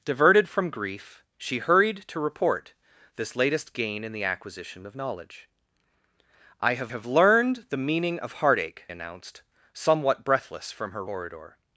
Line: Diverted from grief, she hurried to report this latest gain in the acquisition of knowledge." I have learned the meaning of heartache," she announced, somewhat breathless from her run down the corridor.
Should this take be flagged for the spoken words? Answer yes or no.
yes